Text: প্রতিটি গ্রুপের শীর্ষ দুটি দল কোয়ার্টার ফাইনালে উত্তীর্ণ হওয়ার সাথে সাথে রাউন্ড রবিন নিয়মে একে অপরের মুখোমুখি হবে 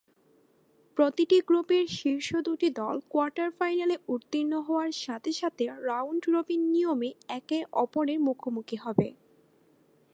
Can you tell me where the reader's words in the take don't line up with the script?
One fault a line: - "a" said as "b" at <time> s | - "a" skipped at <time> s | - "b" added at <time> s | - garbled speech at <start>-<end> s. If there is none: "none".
none